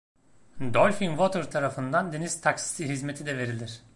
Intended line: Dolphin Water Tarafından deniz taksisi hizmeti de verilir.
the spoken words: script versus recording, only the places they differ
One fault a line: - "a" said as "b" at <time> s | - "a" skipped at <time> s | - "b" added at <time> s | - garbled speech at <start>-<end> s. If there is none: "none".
none